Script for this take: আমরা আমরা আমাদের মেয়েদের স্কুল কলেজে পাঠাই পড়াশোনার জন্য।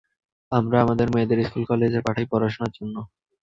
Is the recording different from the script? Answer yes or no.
yes